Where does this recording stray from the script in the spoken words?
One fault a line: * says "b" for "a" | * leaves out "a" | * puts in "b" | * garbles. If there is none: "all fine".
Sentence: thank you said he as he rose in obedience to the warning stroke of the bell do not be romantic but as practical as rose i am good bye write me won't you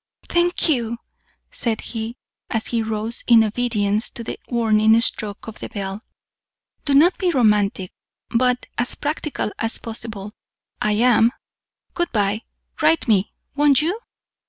* says "possible" for "rose"